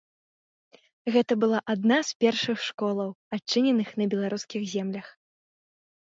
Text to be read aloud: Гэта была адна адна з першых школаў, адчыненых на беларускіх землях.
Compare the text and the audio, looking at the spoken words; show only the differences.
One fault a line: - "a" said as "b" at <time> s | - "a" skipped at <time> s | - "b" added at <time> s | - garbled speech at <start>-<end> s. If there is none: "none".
- "адна" skipped at 2.0 s